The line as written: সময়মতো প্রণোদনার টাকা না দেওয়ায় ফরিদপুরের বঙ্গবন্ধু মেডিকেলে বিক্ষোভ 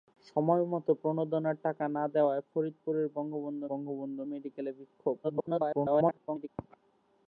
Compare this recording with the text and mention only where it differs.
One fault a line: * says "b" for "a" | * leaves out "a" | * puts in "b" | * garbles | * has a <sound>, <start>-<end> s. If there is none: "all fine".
* puts in "বঙ্গবন্ধু"
* garbles